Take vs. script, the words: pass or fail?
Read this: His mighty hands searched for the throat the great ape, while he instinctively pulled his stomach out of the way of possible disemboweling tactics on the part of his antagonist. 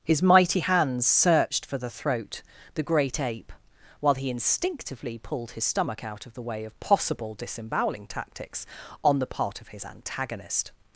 pass